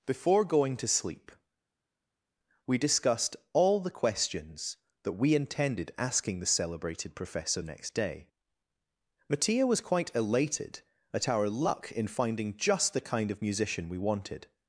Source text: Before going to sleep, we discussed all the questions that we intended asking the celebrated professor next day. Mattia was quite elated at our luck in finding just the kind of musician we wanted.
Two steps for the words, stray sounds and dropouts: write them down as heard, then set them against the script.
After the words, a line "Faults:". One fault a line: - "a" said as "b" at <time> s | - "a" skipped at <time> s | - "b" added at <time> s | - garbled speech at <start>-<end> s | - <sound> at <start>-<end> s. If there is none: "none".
Before going to sleep, we discussed all the questions that we intended asking the celebrated professor next day. Mattia was quite elated at our luck in finding just the kind of musician we wanted.
Faults:
none